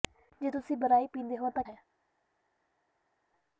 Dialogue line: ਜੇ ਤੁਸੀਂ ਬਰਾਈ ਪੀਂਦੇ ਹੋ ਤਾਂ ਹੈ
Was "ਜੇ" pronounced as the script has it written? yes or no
yes